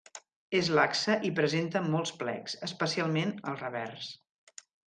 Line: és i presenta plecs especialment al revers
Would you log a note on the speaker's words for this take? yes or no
yes